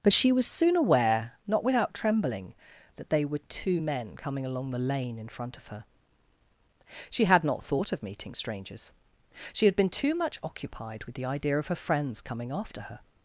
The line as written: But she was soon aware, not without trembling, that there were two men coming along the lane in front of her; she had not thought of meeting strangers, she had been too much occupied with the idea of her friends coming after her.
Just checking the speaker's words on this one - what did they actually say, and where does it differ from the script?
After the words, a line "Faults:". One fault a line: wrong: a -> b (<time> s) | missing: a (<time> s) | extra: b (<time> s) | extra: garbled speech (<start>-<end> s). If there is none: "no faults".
But she was soon aware, not without trembling, that they were two men coming along the lane in front of her; she had not thought of meeting strangers, she had been too much occupied with the idea of her friends coming after her.
Faults:
wrong: there -> they (3.1 s)